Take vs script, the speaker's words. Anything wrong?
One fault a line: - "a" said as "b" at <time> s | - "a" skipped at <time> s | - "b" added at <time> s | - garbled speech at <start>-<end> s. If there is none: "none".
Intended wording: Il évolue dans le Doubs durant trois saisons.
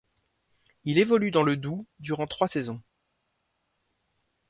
none